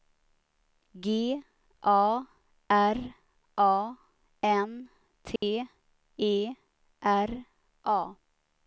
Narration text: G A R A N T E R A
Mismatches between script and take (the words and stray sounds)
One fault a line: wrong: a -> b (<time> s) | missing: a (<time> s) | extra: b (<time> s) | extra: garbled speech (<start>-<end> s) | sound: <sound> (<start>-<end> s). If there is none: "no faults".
sound: dropout (5.4-5.4 s)